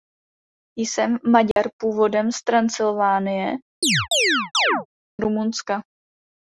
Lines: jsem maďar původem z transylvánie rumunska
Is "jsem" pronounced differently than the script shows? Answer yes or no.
no